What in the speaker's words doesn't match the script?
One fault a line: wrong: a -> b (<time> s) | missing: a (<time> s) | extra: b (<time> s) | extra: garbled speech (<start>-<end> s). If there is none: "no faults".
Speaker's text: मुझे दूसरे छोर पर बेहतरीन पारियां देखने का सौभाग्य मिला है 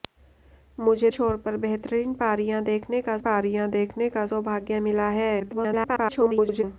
missing: दूसरे (1.1 s)
extra: पारियां देखने का (3.2 s)
extra: garbled speech (5.4-6.6 s)